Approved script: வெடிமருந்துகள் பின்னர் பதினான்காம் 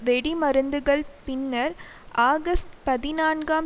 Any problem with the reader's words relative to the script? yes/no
yes